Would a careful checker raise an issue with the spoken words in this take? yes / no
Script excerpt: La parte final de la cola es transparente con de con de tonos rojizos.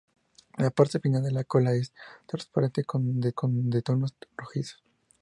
no